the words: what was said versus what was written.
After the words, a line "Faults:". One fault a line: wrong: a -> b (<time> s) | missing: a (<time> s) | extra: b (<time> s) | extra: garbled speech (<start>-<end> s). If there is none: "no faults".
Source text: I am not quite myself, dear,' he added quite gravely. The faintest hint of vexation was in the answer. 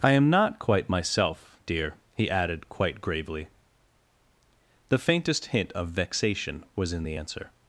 I am not quite myself, dear,' he added quite gravely. The faintest hint of vexation was in the answer.
Faults:
no faults